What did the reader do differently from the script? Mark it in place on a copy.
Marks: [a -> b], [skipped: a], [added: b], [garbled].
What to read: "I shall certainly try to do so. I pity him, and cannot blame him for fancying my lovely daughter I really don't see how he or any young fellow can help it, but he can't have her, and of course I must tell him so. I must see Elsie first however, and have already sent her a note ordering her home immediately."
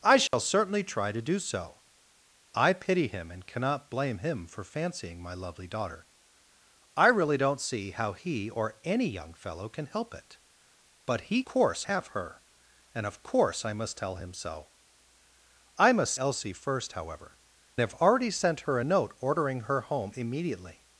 "I shall certainly try to do so. I pity him, and cannot blame him for fancying my lovely daughter I really don't see how he or any young fellow can help it, but he [can't -> course] have her, and of course I must tell him so. I must [skipped: see] Elsie first however, [skipped: and] have already sent her a note ordering her home immediately."